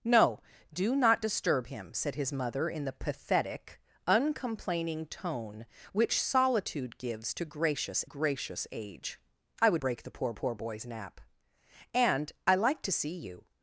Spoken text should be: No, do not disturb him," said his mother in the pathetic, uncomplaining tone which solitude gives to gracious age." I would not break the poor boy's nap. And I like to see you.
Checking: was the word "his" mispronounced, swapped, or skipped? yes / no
no